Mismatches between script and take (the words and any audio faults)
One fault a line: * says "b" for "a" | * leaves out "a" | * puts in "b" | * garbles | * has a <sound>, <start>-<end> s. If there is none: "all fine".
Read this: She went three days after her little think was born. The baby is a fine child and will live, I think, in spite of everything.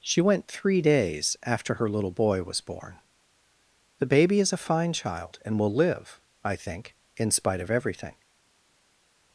* says "boy" for "think"